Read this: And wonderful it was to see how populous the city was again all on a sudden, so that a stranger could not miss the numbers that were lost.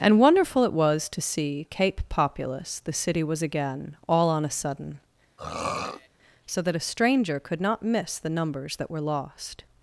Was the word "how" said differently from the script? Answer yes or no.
yes